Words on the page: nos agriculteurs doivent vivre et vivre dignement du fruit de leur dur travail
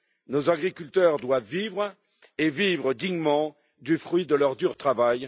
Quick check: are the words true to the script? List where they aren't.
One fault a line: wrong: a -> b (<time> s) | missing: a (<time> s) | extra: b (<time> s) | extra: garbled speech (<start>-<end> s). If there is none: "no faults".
no faults